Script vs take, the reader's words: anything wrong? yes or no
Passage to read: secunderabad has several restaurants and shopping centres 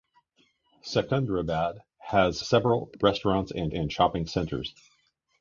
yes